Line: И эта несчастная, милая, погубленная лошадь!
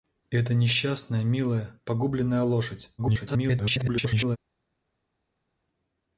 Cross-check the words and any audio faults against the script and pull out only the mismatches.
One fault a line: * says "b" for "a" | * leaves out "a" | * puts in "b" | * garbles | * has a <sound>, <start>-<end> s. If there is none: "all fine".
* garbles